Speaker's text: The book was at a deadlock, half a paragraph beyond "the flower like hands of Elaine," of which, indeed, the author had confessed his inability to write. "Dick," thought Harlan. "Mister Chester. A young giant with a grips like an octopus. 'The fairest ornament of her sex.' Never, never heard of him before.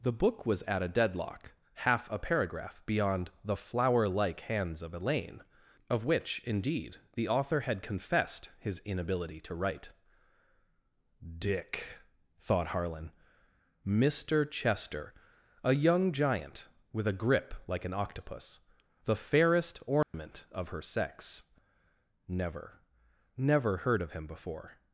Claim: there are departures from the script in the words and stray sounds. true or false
true